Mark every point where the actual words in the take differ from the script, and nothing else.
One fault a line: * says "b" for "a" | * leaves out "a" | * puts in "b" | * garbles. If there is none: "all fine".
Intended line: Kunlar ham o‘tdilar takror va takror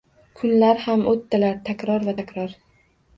all fine